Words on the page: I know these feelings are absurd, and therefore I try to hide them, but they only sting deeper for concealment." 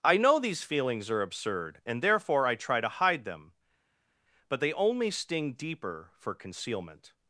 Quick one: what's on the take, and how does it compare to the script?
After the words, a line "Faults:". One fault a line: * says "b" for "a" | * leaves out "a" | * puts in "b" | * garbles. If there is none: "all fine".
I know these feelings are absurd, and therefore I try to hide them, but they only sting deeper for concealment."
Faults:
all fine